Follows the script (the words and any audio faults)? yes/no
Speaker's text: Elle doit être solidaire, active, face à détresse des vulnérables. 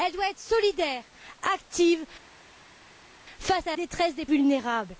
yes